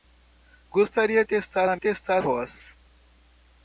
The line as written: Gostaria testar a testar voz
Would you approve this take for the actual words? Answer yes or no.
yes